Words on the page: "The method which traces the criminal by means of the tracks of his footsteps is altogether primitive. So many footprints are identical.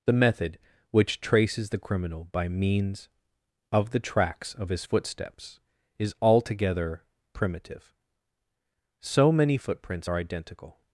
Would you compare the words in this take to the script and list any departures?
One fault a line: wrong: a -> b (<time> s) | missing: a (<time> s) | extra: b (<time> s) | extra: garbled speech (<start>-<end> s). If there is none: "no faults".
no faults